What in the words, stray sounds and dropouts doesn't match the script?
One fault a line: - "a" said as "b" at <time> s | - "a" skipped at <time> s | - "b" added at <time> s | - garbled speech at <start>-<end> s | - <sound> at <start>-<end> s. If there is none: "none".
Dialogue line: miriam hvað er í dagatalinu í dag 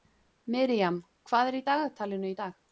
none